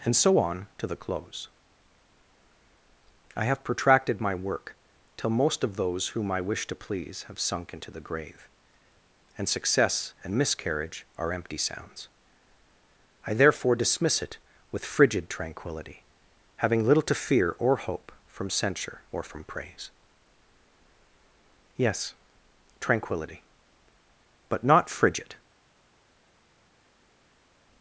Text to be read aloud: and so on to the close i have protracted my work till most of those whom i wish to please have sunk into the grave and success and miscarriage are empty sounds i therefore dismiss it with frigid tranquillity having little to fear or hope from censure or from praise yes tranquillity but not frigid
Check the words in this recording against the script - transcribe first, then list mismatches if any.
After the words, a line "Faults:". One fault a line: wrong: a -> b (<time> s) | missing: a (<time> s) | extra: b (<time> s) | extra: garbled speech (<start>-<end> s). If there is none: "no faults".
and so on to the close i have protracted my work till most of those whom i wish to please have sunk into the grave and success and miscarriage are empty sounds i therefore dismiss it with frigid tranquillity having little to fear or hope from censure or from praise yes tranquillity but not frigid
Faults:
no faults